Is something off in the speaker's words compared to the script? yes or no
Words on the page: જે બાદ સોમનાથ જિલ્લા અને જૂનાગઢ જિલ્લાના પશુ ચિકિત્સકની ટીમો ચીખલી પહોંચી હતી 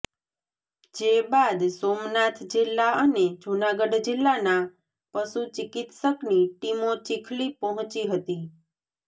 no